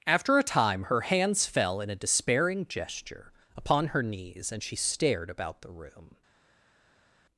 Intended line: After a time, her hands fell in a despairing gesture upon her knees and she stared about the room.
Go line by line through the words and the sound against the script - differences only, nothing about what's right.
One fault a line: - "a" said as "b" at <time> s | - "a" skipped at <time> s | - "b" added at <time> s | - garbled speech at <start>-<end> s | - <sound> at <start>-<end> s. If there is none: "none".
none